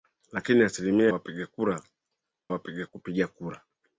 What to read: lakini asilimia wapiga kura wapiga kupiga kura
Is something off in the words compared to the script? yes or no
no